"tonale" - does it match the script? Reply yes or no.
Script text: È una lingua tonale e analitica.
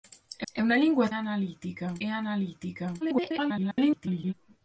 no